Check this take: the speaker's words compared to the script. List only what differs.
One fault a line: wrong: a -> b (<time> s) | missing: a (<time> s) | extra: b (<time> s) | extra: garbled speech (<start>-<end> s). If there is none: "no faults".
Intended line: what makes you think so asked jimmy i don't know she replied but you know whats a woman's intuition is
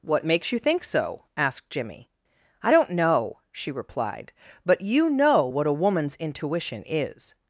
wrong: whats -> what (5.5 s)